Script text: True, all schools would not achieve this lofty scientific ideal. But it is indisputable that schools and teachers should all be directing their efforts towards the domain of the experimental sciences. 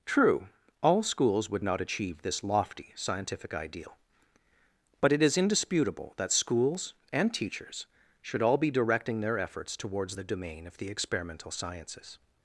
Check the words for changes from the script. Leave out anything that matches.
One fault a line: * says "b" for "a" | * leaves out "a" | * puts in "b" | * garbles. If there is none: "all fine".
all fine